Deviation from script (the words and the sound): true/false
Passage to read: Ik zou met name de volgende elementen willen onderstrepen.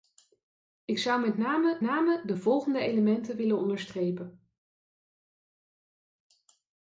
true